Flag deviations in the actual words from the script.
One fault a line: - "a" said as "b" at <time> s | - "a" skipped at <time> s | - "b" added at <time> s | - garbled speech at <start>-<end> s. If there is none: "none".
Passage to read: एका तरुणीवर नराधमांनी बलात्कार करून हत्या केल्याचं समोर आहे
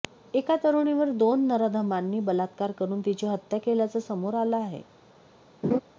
- "दोन" added at 1.1 s
- "तिची" added at 3.0 s
- "आलं" added at 4.3 s